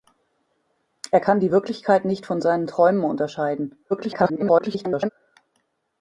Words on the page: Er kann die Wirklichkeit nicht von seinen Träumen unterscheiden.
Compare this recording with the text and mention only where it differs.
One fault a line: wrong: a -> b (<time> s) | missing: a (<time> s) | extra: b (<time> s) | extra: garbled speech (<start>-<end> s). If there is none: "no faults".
extra: garbled speech (3.9-5.1 s)